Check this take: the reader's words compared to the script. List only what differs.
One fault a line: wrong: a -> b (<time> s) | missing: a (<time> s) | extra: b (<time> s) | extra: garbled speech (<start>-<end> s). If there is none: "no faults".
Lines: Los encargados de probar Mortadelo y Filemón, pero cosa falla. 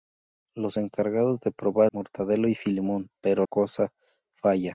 no faults